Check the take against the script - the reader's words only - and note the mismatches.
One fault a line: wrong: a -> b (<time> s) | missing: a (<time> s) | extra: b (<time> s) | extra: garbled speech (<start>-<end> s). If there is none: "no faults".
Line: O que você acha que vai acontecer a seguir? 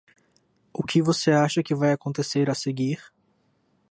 no faults